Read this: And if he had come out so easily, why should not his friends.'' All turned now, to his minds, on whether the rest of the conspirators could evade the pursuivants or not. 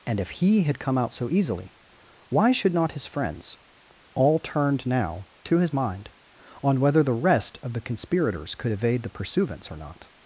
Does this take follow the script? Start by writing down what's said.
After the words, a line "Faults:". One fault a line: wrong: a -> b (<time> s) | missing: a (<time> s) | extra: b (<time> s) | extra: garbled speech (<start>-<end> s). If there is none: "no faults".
And if he had come out so easily, why should not his friends.'' All turned now, to his mind, on whether the rest of the conspirators could evade the pursuivants or not.
Faults:
wrong: minds -> mind (5.7 s)